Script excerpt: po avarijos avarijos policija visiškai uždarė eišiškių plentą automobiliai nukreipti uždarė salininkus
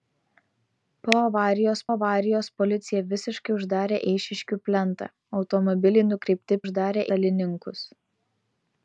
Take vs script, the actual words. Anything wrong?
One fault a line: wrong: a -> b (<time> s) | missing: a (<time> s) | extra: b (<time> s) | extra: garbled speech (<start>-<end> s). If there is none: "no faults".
no faults